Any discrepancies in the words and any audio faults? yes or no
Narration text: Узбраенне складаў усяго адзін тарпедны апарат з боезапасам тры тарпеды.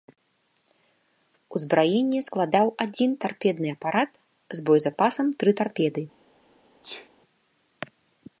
yes